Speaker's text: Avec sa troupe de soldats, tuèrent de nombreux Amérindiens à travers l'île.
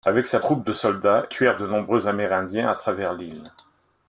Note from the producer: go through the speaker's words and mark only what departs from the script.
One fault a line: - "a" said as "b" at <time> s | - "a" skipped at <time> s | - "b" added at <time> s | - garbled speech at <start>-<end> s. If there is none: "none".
none